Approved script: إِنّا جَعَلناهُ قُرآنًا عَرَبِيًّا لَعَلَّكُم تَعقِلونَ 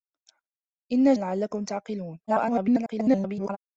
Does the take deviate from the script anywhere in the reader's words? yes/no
yes